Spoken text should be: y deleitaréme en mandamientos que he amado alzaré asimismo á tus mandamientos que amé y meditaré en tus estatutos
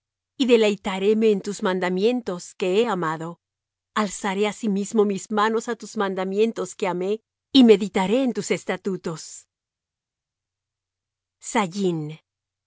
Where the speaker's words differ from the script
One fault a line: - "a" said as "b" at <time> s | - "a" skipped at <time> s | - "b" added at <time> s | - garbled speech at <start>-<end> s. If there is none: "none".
- "tus" added at 1.4 s
- "mis manos" added at 5.1 s